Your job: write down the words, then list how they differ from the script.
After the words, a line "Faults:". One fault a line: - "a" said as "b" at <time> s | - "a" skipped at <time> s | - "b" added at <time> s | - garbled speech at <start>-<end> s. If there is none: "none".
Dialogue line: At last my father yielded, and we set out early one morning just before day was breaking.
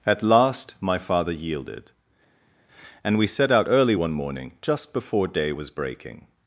At last my father yielded, and we set out early one morning just before day was breaking.
Faults:
none